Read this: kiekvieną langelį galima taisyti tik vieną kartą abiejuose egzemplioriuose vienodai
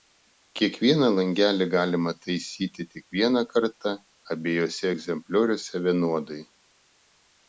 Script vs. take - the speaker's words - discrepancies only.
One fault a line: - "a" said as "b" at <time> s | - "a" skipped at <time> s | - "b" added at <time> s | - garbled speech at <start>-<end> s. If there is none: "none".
none